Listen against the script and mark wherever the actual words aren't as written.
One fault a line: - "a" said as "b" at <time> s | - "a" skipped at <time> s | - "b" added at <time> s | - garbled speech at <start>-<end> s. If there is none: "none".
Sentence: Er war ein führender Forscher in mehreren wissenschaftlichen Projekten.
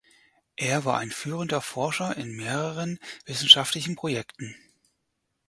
none